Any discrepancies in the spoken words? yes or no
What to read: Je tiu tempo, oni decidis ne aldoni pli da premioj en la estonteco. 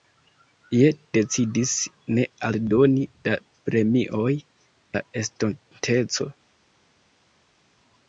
yes